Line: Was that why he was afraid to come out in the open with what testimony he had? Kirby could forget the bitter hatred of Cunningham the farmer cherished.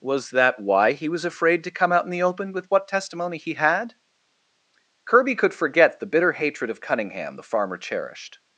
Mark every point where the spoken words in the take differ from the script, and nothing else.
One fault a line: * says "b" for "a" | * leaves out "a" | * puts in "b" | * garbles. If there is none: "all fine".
all fine